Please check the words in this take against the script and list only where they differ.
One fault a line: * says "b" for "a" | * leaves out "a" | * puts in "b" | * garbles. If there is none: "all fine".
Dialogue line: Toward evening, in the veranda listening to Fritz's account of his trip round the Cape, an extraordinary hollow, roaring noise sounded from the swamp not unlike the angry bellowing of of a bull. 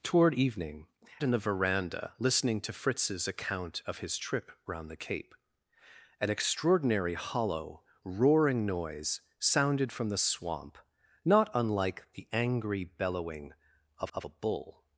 all fine